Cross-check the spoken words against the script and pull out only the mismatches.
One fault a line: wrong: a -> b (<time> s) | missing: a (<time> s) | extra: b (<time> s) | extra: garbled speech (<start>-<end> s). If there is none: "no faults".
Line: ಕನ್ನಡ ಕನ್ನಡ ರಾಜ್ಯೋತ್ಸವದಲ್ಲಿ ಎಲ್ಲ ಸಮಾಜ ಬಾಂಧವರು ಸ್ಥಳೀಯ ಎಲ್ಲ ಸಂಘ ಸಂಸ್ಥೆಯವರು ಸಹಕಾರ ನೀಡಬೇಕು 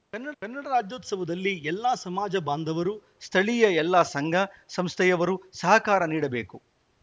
no faults